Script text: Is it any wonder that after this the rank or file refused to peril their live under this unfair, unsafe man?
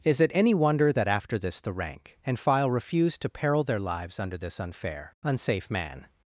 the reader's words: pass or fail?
fail